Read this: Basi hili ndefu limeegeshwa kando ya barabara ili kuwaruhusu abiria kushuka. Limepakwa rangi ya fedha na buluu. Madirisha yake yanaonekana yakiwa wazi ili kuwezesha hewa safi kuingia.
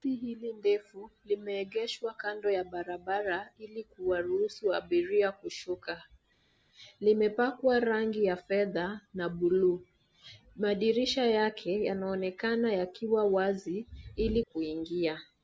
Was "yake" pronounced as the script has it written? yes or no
yes